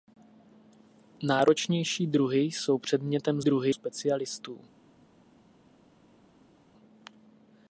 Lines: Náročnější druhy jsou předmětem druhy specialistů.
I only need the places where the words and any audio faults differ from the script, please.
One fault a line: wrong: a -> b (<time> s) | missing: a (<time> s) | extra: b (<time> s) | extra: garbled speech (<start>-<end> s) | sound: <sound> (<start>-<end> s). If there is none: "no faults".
no faults